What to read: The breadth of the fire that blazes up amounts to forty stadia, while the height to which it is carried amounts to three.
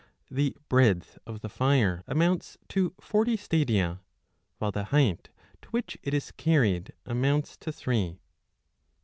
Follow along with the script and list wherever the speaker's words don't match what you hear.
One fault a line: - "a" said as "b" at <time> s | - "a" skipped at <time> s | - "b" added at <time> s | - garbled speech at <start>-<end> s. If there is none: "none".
- "that blazes up" skipped at 2.0 s